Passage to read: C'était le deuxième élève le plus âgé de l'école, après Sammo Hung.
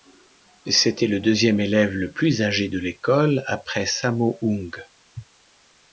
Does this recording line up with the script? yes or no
yes